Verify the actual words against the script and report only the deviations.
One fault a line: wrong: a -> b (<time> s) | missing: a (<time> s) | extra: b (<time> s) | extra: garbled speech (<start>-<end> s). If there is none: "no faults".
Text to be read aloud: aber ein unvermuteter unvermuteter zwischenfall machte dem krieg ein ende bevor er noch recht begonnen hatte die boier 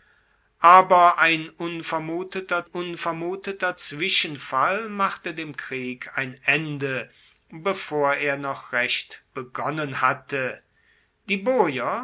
no faults